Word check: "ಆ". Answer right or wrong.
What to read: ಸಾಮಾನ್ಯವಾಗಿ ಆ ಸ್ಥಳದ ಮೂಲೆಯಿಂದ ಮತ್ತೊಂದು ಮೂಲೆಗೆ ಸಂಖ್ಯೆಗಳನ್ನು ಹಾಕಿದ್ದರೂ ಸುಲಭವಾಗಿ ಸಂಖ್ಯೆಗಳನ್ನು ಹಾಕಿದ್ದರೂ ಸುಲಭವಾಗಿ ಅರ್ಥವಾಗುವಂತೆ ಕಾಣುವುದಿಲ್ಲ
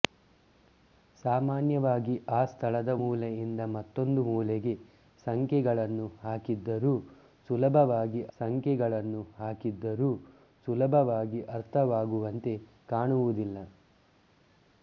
right